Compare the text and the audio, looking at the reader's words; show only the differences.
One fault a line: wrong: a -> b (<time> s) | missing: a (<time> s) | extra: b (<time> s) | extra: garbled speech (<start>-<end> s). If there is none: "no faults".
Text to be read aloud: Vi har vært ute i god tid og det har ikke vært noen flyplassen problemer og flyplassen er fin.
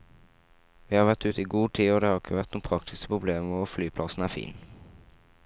wrong: flyplassen -> praktiske (2.7 s)